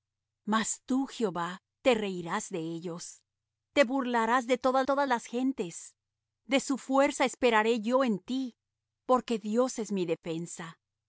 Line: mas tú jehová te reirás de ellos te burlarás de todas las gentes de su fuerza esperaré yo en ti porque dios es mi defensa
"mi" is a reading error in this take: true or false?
false